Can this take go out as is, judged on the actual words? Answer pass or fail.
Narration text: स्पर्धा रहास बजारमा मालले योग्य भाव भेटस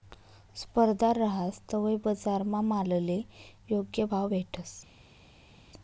fail